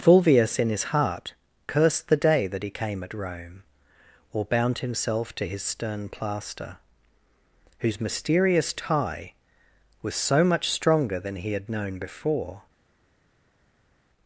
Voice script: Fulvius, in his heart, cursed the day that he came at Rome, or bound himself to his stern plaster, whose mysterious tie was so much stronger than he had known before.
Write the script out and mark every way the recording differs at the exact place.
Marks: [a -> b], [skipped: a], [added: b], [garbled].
Fulvius, in his heart, cursed the day that he came at Rome, or bound himself to his stern plaster, whose mysterious tie was so much stronger than he had known before.